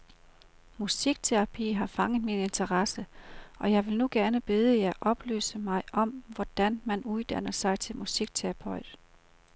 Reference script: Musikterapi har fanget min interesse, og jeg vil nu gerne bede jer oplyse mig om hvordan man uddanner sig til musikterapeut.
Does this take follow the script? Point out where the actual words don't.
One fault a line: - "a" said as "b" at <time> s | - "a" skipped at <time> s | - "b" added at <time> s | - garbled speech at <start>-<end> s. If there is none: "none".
none